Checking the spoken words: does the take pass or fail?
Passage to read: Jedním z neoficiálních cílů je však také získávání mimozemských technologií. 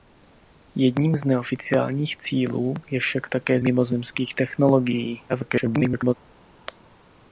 fail